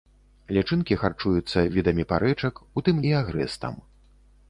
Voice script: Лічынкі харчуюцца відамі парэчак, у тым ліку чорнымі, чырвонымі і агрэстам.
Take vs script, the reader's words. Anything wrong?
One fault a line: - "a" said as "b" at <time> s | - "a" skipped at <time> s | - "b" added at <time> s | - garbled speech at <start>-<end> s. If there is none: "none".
- "ліку чорнымі чырвонымі" skipped at 3.0 s